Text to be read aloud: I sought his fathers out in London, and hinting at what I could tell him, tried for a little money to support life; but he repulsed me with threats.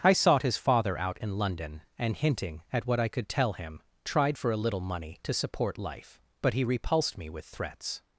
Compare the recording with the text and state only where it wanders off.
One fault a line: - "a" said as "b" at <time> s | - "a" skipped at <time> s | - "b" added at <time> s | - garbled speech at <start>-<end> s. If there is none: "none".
- "fathers" said as "father" at 0.6 s